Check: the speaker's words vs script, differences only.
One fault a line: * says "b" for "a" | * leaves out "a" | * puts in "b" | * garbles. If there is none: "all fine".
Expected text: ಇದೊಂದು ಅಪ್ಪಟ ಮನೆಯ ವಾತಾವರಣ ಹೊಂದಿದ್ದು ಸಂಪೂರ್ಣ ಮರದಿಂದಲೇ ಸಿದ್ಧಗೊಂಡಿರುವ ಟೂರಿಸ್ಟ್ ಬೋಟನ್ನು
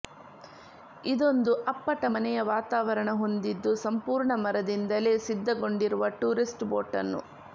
all fine